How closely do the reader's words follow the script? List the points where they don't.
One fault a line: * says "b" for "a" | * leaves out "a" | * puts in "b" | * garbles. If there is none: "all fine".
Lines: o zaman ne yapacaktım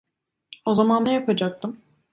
all fine